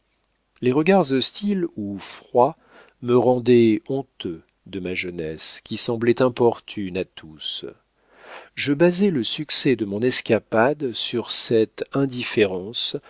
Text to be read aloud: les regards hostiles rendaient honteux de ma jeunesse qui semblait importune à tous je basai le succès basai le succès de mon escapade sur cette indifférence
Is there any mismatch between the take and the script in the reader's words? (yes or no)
yes